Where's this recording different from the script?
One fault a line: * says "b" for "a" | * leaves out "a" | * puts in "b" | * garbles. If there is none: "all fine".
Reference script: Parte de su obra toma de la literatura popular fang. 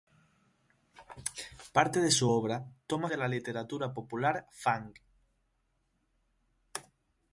all fine